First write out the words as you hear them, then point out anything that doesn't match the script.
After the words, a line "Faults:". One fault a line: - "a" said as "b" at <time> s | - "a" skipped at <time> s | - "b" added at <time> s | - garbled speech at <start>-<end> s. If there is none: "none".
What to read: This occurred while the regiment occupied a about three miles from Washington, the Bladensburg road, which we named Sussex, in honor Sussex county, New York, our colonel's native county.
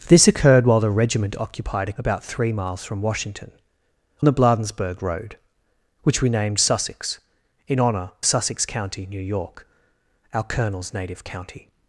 This occurred while the regiment occupied a about three miles from Washington, the Bladensburg road, which we named Sussex, in honor Sussex county, New York, our colonel's native county.
Faults:
none